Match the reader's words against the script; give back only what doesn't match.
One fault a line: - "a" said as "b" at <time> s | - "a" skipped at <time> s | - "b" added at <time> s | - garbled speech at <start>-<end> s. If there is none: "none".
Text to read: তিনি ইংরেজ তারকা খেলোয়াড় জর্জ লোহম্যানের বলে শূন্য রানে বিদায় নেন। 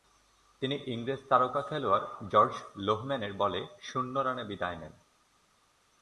none